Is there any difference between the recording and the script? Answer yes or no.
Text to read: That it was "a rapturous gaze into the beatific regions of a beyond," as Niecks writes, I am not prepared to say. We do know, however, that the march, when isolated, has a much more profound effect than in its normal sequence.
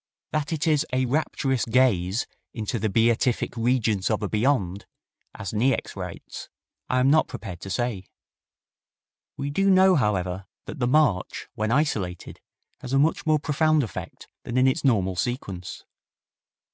yes